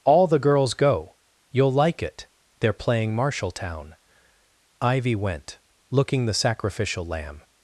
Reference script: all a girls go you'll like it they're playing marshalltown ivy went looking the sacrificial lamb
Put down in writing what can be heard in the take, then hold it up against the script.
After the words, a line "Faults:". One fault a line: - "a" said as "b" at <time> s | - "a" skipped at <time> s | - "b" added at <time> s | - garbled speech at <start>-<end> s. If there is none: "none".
all the girls go you'll like it they're playing marshalltown ivy went looking the sacrificial lamb
Faults:
- "a" said as "the" at 0.3 s